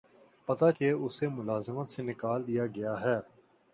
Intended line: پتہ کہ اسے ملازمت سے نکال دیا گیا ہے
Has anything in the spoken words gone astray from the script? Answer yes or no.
no